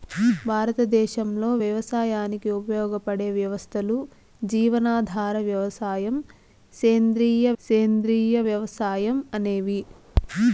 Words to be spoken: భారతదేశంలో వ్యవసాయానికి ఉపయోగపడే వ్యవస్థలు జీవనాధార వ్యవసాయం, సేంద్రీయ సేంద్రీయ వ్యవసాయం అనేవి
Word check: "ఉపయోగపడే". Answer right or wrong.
right